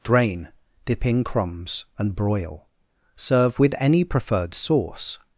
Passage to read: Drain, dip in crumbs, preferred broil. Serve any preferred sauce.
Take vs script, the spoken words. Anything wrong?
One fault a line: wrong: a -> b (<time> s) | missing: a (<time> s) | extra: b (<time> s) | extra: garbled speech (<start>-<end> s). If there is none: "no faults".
wrong: preferred -> and (2.0 s)
extra: with (3.6 s)